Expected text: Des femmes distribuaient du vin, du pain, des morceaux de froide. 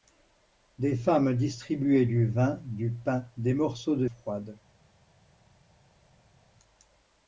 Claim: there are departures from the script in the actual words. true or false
false